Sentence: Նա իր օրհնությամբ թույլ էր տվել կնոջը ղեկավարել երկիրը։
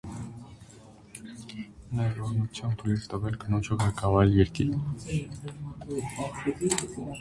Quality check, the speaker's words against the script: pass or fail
pass